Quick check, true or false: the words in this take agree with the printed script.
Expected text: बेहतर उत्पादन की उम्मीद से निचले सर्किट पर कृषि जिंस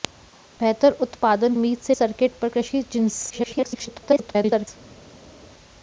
false